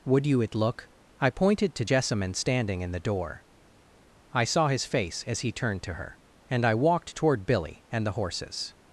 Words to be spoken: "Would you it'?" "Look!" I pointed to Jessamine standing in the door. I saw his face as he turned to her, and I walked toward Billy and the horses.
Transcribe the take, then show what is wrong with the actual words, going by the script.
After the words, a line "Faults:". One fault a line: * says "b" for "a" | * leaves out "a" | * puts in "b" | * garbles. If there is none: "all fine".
"Would you it'?" "Look!" I pointed to Jessamine standing in the door. I saw his face as he turned to her, and I walked toward Billy and the horses.
Faults:
all fine